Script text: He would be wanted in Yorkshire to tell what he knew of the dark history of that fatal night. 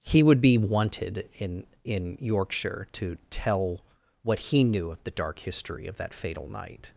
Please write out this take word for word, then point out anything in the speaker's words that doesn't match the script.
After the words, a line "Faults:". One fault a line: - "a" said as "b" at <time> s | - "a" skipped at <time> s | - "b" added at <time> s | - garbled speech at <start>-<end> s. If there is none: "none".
He would be wanted in in Yorkshire to tell what he knew of the dark history of that fatal night.
Faults:
- "in" added at 1.8 s